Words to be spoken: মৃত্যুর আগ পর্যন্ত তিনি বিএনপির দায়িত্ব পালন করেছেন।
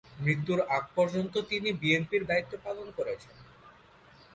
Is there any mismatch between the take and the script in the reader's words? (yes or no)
no